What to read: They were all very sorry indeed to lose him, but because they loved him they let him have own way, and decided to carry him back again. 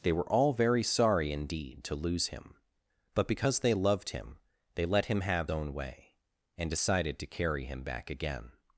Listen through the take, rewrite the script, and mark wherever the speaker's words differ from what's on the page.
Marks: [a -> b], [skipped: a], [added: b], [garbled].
They were all very sorry indeed to lose him, but because they loved him they let him have own way, and decided to carry him back again.